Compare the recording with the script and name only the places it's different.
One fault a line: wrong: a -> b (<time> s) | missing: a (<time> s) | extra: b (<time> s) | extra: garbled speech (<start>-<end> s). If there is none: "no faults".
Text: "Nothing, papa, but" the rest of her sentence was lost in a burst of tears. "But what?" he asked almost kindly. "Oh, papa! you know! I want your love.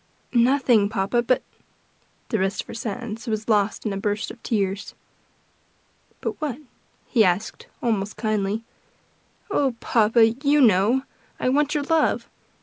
no faults